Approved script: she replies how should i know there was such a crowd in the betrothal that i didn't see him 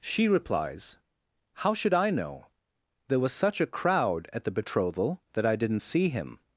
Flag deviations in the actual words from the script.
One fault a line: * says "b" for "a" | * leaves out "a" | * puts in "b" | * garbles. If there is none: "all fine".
* says "at" for "in"